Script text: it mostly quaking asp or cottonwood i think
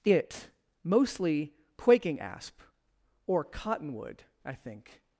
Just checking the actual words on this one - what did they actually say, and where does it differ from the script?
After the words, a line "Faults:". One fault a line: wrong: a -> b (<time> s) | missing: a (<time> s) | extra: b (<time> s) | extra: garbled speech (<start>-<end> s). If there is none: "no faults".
it mostly quaking asp or cottonwood i think
Faults:
no faults